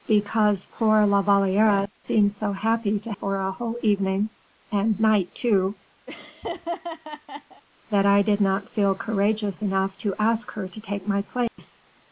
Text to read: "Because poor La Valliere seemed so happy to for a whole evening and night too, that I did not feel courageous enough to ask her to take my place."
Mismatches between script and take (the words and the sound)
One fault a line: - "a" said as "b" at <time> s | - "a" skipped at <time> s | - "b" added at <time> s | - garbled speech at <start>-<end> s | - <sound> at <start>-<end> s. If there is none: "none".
- laugh at 6.1-7.6 s
- dropout at 11.5-11.6 s